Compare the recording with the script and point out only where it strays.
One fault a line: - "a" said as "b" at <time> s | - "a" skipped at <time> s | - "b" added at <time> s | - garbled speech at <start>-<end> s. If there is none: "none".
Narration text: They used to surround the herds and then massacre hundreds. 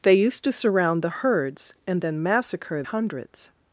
none